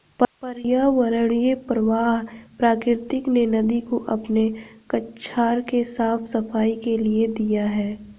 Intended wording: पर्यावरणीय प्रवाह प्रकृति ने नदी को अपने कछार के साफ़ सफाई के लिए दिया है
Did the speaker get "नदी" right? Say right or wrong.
right